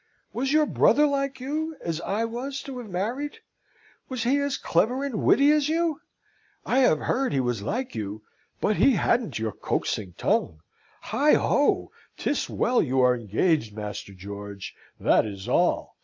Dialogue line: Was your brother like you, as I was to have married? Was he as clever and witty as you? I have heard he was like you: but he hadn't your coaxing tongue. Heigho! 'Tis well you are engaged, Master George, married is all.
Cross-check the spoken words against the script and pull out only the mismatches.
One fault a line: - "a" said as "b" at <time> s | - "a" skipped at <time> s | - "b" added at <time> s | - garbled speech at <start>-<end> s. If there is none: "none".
- "married" said as "that" at 15.0 s